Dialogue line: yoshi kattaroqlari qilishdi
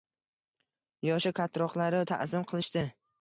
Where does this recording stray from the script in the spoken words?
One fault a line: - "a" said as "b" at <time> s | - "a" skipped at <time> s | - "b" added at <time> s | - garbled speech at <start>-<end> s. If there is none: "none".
- "ta`zim" added at 2.1 s